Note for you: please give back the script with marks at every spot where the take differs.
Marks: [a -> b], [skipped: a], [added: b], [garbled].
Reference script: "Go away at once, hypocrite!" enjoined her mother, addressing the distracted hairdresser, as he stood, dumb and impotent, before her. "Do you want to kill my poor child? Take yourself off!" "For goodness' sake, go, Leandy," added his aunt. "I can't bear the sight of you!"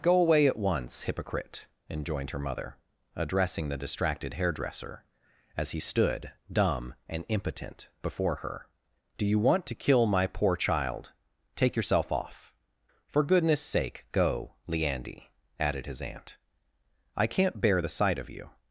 "Go away at once, hypocrite!" enjoined her mother, addressing the distracted hairdresser, as he stood, dumb and impotent, before her. "Do you want to kill my poor child? Take yourself off!" "For goodness' sake, go, Leandy," added his aunt. "I can't bear the sight of you!"